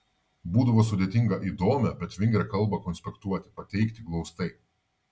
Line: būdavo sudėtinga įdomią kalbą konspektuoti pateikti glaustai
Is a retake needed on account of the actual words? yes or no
yes